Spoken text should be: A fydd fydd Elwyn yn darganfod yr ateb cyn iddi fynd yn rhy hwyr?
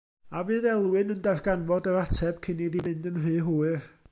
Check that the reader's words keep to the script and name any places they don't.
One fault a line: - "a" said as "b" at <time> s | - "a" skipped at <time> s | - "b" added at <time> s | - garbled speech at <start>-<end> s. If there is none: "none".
- "fydd" skipped at 0.7 s